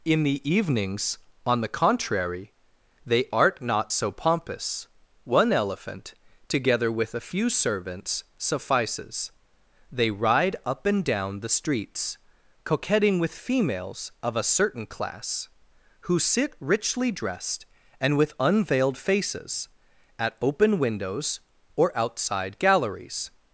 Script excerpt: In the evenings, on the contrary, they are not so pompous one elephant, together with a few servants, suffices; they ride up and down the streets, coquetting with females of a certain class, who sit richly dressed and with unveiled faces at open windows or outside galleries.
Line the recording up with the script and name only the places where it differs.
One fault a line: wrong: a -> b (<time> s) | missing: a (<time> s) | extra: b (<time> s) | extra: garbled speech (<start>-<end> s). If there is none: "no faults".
wrong: are -> art (3.3 s)